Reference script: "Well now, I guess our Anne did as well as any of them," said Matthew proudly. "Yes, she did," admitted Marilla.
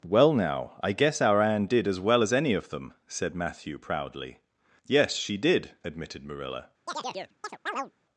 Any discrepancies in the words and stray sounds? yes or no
yes